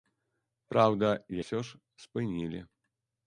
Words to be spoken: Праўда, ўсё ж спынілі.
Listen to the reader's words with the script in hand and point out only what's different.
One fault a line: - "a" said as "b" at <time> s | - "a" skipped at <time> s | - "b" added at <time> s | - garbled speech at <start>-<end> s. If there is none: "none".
none